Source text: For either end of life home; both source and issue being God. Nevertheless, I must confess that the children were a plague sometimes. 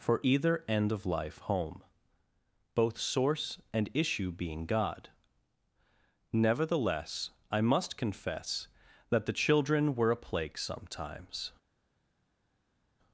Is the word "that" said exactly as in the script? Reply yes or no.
yes